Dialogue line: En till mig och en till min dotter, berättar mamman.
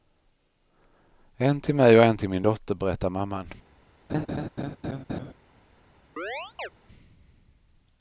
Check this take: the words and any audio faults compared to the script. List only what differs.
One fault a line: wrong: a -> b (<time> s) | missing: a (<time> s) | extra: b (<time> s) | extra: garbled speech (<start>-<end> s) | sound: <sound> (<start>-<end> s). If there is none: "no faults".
sound: laugh (4.1-5.3 s)
sound: chirp (6.2-6.7 s)